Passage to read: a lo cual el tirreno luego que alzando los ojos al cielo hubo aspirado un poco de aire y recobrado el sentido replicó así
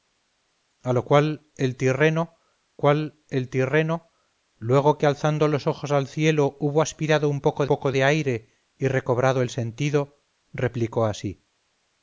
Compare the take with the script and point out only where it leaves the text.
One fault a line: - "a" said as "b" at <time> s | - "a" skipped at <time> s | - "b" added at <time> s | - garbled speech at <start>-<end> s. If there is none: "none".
- "cual el tirreno" added at 2.8 s
- "poco" added at 7.7 s